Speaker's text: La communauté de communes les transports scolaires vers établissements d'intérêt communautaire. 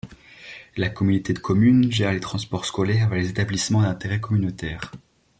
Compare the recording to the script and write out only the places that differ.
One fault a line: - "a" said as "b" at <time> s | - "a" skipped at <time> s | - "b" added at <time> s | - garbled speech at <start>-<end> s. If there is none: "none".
- "gère" added at 1.9 s
- "les" added at 3.2 s